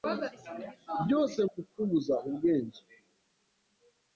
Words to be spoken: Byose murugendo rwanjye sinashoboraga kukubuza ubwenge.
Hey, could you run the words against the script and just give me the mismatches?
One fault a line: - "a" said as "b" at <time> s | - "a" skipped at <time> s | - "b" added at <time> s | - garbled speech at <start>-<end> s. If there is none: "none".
- "murugendo rwanjye sinashoboraga" skipped at 1.4 s